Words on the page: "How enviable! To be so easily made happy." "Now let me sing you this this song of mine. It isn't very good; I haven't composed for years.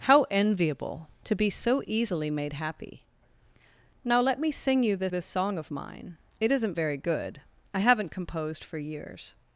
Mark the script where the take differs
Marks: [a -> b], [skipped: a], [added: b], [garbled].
"How enviable! To be so easily made happy." "Now let me sing you this this song of mine. It isn't very good; I haven't composed for years.